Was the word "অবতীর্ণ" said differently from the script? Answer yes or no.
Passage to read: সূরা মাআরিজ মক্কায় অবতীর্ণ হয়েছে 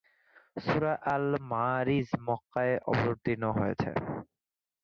no